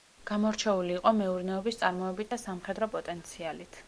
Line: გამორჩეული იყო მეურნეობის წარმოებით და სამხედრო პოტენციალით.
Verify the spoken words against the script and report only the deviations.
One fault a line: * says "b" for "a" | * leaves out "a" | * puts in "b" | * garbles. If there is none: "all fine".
all fine